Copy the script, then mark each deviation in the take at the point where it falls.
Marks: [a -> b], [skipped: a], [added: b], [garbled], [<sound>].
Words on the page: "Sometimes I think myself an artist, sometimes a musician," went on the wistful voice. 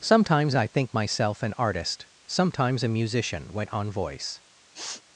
"Sometimes I think myself an artist, sometimes a musician," went on [skipped: the wistful] voice. [sniff]